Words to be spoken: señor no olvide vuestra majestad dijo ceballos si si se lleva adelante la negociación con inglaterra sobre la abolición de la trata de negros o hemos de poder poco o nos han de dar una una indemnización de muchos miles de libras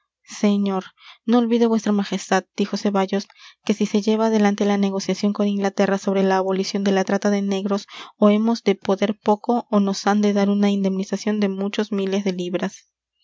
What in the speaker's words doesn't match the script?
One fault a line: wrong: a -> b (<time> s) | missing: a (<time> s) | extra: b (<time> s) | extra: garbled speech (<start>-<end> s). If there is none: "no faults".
wrong: si -> que (3.6 s)
missing: una (10.7 s)